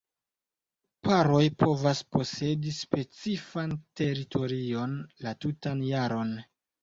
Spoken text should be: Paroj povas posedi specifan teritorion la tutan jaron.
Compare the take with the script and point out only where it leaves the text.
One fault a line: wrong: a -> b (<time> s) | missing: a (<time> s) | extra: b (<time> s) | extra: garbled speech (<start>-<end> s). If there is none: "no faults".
no faults